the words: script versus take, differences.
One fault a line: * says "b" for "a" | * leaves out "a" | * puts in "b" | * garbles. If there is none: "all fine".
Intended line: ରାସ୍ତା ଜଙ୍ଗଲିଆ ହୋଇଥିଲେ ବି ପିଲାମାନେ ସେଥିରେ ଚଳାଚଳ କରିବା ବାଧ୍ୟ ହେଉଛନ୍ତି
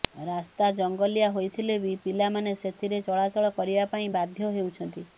* puts in "ପାଇଁ"